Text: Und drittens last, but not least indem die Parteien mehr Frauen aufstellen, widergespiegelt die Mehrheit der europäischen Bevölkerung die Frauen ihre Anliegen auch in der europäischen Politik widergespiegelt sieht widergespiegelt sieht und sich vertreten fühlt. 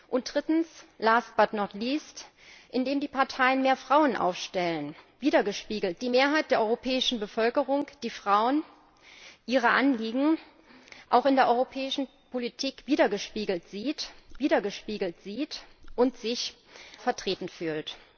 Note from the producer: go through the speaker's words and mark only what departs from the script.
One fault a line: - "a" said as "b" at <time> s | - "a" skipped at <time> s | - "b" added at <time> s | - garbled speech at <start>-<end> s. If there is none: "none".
none